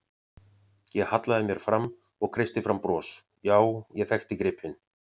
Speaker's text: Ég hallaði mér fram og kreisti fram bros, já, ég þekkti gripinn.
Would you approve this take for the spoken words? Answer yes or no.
yes